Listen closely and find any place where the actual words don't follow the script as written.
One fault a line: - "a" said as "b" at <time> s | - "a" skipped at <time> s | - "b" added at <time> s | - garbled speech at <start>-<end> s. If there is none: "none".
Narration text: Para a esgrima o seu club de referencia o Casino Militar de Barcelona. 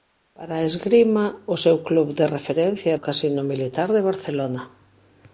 none